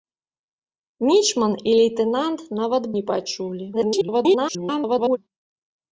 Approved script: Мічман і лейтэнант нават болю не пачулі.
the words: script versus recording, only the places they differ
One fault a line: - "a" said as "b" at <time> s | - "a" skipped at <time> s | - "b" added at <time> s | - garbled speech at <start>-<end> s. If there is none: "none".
- "болю" skipped at 2.8 s
- garbled speech at 3.7-5.2 s